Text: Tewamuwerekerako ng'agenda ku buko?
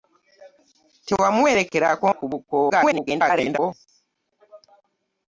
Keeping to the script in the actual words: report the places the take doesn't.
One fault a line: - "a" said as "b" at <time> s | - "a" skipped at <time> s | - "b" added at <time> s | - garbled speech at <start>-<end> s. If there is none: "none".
- "ng'agenda" skipped at 2.1 s
- garbled speech at 2.7-3.6 s